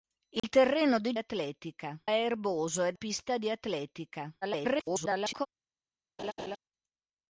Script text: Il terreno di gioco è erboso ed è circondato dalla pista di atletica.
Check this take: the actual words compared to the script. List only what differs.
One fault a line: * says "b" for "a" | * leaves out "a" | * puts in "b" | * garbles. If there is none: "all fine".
* says "atletica" for "gioco"
* leaves out "è circondato dalla"
* garbles